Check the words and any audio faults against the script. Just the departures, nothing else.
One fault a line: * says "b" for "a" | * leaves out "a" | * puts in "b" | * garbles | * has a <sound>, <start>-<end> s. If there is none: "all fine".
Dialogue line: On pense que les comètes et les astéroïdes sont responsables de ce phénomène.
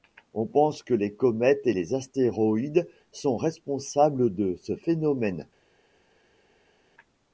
all fine